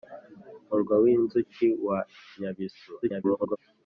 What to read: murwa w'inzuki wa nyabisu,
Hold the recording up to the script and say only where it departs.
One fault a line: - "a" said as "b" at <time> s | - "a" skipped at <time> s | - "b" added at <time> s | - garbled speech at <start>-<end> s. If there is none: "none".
- garbled speech at 3.0-3.6 s